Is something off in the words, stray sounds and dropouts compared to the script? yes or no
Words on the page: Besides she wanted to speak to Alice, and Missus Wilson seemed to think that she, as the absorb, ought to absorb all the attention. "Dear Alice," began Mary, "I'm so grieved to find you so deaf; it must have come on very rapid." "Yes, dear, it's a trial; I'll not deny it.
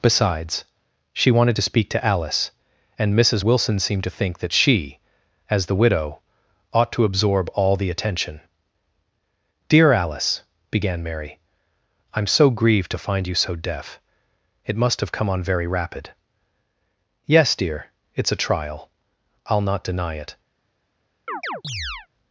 yes